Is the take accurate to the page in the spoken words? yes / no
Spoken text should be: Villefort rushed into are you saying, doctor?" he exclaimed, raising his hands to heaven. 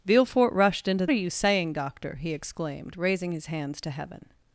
yes